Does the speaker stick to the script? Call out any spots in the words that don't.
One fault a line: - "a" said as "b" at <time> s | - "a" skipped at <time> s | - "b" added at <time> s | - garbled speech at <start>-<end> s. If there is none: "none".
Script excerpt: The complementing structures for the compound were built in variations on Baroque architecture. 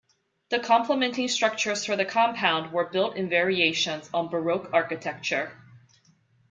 none